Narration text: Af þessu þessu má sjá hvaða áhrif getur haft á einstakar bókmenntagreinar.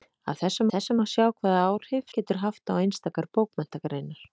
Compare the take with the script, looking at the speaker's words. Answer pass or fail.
pass